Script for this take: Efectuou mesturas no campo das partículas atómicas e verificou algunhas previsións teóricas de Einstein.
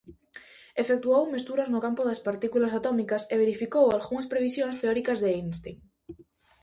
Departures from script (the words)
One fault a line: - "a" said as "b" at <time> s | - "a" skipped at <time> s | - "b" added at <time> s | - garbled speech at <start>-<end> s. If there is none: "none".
none